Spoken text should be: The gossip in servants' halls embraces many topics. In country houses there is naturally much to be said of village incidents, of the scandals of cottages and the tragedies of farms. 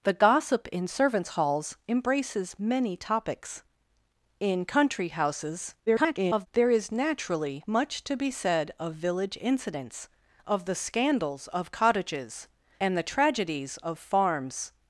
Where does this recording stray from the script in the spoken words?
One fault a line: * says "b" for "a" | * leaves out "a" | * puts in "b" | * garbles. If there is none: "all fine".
* garbles